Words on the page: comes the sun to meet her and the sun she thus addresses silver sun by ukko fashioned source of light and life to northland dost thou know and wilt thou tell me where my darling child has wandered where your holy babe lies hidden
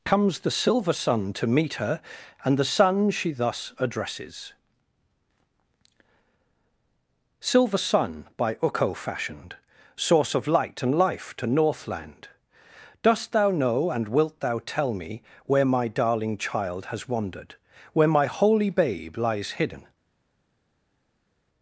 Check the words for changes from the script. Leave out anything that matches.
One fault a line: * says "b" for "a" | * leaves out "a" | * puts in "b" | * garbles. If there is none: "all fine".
* puts in "silver"
* says "my" for "your"